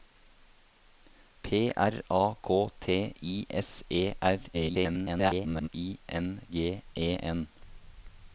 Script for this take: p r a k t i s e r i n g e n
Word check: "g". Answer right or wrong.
right